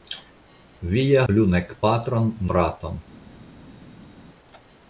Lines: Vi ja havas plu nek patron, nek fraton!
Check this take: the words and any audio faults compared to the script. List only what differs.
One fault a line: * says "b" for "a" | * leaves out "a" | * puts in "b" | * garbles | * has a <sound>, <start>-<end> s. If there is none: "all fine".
* leaves out "havas"
* leaves out "nek"